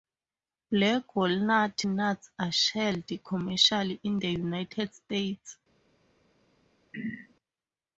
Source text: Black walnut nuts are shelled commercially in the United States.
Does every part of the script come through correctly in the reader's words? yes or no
yes